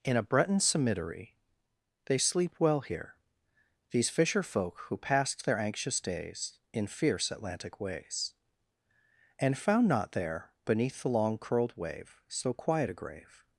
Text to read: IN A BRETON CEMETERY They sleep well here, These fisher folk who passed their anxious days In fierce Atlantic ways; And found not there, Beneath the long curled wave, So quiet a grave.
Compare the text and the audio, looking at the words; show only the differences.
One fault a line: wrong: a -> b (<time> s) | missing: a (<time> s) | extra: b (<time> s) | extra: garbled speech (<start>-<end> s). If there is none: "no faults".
no faults